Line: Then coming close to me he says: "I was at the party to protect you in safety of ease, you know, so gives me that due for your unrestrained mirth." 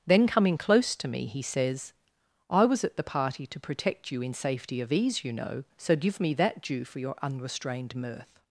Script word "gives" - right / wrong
wrong